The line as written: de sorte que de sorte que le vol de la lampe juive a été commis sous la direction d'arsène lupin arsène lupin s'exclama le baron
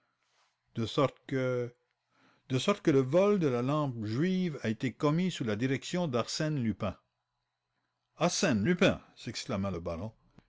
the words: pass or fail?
pass